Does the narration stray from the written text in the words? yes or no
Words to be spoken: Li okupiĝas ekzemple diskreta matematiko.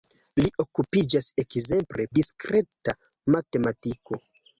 no